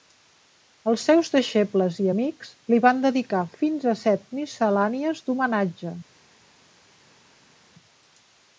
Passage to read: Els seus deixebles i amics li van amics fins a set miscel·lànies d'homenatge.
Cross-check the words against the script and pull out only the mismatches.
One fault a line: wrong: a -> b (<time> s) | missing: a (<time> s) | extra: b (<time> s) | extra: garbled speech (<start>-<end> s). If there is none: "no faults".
wrong: amics -> dedicar (3.1 s)